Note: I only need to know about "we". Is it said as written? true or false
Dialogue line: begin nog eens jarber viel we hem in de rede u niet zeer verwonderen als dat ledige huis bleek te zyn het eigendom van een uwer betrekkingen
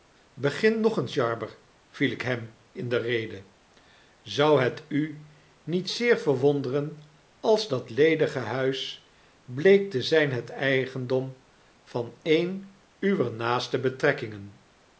false